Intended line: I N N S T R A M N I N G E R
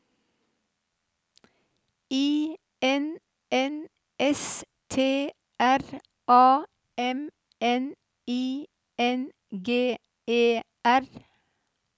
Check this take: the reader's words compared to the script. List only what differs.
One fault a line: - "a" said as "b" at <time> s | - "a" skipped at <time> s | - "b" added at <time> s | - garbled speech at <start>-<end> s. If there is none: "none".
none